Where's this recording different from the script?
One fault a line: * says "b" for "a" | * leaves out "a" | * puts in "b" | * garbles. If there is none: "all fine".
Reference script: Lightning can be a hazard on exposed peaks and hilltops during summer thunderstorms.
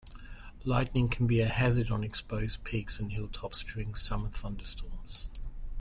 all fine